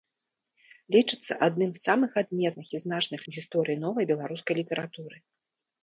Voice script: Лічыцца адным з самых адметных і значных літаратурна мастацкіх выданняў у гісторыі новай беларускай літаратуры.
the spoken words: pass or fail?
fail